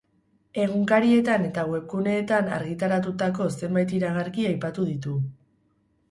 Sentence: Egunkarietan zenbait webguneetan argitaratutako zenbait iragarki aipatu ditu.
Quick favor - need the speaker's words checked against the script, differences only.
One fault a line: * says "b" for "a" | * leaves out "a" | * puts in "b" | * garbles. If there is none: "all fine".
* says "eta" for "zenbait"